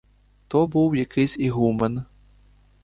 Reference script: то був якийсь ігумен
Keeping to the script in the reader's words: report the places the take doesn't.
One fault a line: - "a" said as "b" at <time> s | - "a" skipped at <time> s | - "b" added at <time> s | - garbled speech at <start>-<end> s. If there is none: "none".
none